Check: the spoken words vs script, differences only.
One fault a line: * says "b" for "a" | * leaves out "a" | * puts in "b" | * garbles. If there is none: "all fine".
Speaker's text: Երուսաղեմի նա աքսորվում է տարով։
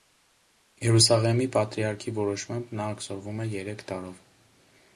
* puts in "պատրիարքի որոշմամբ"
* puts in "երեք"